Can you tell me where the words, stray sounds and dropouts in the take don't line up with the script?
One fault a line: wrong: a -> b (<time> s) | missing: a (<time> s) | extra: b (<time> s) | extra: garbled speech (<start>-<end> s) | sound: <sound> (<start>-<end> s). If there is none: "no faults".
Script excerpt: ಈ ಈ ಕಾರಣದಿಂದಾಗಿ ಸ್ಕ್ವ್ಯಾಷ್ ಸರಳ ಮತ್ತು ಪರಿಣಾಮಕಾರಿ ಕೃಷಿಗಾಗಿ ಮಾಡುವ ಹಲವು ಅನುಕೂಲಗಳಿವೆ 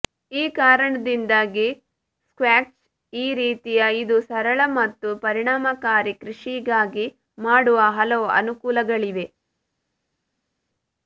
extra: ಕಾರಣದಿಂದಾಗಿ ಸ್ಕ್ವ್ಯಾಷ್ (0.5 s)
wrong: ಕಾರಣದಿಂದಾಗಿ ಸ್ಕ್ವ್ಯಾಷ್ -> ರೀತಿಯ ಇದು (3.4 s)